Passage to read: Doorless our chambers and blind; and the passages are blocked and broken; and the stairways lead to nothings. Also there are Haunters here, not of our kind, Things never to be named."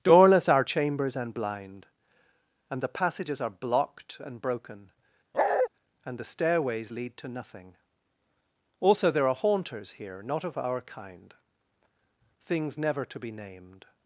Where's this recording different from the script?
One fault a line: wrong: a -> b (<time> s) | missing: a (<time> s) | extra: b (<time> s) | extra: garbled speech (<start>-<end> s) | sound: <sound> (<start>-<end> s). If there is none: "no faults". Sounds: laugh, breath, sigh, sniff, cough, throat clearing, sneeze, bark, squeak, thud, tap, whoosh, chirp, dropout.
sound: bark (5.3-5.7 s)
wrong: nothings -> nothing (7.3 s)